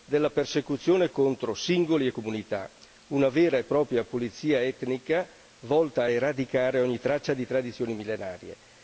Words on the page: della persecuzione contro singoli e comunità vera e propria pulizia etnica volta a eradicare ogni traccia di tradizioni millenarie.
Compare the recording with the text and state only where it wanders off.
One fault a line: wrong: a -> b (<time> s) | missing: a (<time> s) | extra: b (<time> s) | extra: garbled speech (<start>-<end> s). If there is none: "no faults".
extra: una (3.1 s)